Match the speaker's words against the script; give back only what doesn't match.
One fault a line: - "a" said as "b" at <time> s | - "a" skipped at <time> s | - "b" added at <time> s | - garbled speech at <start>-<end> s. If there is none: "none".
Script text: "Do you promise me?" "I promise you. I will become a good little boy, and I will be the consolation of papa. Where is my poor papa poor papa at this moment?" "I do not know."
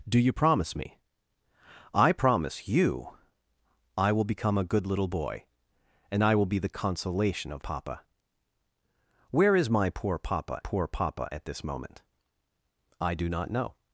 none